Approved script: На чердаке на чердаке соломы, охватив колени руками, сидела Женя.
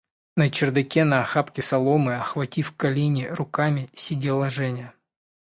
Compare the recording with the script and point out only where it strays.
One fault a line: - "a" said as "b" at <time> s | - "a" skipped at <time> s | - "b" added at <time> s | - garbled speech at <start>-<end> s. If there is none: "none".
- "чердаке" said as "охапке" at 1.2 s